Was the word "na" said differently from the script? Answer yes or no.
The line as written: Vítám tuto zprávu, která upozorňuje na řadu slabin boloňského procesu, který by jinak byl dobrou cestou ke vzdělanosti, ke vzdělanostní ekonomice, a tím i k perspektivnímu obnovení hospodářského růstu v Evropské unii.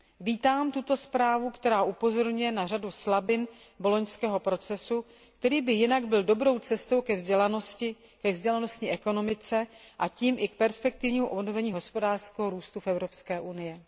no